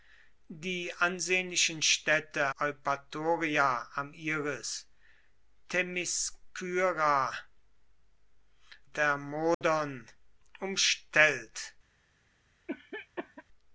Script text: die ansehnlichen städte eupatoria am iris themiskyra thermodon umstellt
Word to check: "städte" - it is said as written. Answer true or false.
true